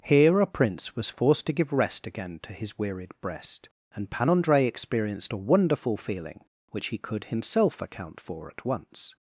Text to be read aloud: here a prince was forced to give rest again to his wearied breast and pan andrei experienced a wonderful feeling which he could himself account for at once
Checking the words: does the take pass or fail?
pass